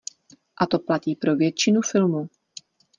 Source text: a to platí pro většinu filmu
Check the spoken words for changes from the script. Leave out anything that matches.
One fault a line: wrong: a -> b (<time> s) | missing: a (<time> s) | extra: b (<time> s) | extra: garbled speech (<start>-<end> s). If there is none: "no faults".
no faults